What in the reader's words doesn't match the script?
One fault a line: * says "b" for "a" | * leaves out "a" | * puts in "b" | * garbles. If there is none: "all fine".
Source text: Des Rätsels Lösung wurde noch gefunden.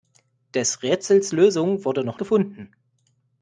all fine